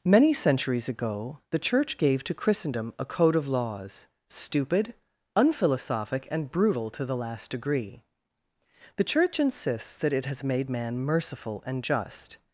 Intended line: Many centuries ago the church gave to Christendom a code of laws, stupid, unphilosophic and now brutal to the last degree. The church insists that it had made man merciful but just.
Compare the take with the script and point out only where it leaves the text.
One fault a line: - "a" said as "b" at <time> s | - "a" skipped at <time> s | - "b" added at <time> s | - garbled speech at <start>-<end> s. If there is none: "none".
- "now" skipped at 6.5 s
- "had" said as "has" at 10.2 s
- "but" said as "and" at 11.7 s